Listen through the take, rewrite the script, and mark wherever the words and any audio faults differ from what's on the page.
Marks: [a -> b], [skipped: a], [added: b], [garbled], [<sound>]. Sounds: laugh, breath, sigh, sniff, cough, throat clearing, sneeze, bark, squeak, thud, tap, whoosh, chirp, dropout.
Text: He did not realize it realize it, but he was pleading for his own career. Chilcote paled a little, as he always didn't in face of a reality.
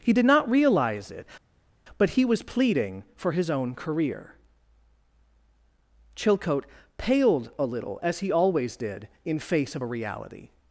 He did not realize it [skipped: realize it,] but he was pleading for his own career. Chilcote paled a little, as he always [didn't -> did] in face of a reality.